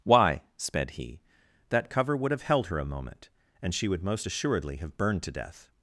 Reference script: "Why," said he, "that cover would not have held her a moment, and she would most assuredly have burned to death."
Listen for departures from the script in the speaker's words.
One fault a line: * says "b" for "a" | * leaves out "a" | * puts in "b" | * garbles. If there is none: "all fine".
* says "sped" for "said"
* leaves out "not"